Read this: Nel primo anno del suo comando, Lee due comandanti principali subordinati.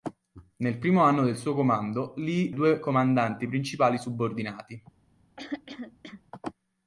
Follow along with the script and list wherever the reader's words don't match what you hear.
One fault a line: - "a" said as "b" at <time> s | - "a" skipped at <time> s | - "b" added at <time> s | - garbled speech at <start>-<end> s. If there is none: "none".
none